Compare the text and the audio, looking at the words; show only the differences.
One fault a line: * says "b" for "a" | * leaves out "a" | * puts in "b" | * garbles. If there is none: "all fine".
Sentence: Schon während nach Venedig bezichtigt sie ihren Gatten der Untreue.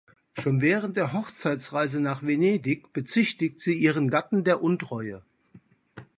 * puts in "der Hochzeitsreise"